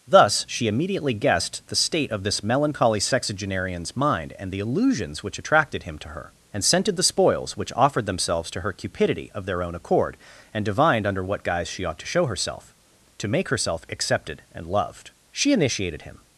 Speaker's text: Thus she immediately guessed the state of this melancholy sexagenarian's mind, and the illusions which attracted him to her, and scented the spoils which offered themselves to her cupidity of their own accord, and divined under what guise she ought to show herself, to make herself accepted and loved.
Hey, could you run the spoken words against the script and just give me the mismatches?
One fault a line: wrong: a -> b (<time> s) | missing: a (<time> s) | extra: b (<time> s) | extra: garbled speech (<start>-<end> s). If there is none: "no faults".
extra: She initiated him (15.3 s)